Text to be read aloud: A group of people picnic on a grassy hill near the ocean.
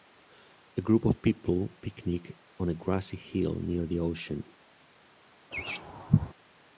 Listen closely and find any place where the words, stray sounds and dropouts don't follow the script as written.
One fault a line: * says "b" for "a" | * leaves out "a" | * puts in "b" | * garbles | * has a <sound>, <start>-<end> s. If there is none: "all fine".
* has a laugh, 5.5-6.3 s